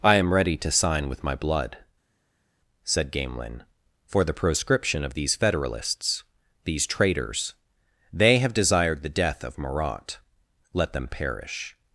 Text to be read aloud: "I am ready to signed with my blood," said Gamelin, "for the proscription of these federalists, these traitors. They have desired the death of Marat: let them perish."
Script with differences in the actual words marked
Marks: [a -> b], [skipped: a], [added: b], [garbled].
"I am ready to [signed -> sign] with my blood," said Gamelin, "for the proscription of these federalists, these traitors. They have desired the death of Marat: let them perish."